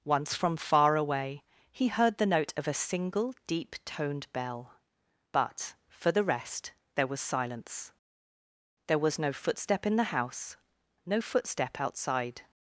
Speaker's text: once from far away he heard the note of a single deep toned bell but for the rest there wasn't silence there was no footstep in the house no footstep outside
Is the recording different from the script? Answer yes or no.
yes